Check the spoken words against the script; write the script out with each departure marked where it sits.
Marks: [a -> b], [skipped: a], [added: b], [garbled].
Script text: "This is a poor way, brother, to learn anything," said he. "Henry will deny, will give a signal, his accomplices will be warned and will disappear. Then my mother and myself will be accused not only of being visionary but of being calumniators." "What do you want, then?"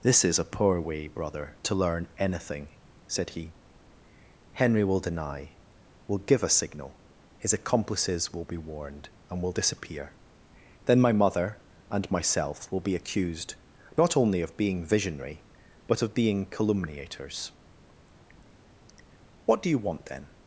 "This is a poor way, brother, to learn anything," said he. "Henry will deny, will give a signal, his accomplices will be warned and will disappear. Then my mother and myself will be accused not only of being visionary but of being calumniators." "What do you want, then?"